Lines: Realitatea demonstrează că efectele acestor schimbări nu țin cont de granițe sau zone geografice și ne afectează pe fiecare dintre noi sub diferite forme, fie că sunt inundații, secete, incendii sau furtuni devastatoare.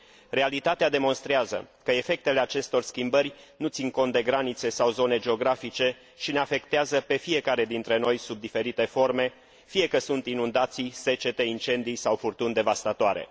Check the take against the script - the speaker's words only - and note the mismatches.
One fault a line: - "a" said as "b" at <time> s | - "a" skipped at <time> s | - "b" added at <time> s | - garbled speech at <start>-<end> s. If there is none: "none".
none